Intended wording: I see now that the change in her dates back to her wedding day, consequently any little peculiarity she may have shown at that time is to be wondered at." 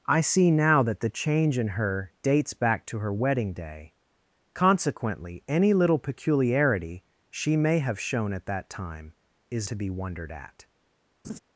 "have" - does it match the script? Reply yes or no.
yes